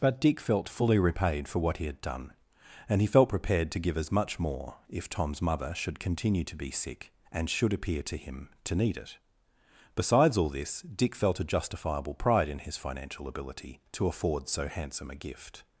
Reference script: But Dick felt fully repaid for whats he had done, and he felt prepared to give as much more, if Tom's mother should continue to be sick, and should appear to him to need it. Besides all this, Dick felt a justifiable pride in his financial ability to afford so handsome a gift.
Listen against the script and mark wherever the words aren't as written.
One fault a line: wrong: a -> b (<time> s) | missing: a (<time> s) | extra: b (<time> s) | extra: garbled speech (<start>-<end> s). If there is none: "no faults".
wrong: whats -> what (1.6 s)